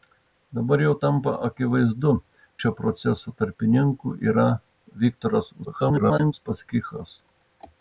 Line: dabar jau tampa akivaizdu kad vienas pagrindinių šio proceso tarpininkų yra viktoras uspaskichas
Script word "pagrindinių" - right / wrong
wrong